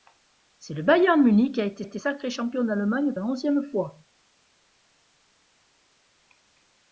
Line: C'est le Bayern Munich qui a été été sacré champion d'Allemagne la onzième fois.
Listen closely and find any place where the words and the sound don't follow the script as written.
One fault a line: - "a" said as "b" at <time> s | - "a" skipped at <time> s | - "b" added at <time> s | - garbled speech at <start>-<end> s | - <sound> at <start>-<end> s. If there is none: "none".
none